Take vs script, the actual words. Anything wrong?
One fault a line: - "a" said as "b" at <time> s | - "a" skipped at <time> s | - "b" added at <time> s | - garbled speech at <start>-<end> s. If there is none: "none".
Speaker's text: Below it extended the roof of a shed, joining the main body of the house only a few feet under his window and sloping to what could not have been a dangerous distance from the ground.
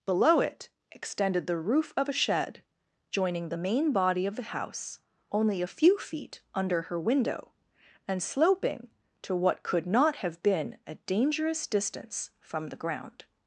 - "his" said as "her" at 6.8 s